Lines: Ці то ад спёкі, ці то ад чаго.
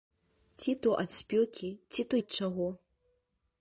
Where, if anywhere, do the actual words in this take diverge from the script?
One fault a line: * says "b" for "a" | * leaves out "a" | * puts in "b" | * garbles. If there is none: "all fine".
all fine